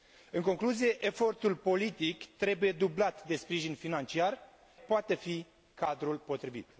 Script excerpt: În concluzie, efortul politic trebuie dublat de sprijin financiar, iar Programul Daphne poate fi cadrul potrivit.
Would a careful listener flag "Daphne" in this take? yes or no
yes